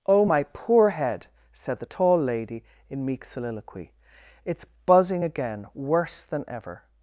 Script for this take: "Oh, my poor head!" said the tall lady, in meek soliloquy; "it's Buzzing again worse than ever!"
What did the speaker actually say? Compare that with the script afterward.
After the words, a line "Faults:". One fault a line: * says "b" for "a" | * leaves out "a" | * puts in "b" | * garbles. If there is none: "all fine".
"Oh, my poor head!" said the tall lady, in meek soliloquy; "it's Buzzing again worse than ever!"
Faults:
all fine